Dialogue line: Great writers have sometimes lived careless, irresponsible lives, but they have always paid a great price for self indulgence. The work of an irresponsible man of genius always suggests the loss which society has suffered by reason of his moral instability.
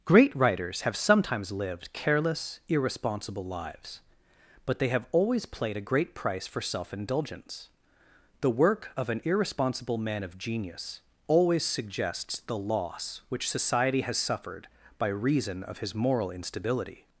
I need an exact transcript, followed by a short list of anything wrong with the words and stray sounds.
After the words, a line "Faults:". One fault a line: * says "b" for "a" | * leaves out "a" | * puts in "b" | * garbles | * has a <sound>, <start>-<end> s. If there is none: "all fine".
Great writers have sometimes lived careless, irresponsible lives, but they have always played a great price for self indulgence. The work of an irresponsible man of genius always suggests the loss which society has suffered by reason of his moral instability.
Faults:
* says "played" for "paid"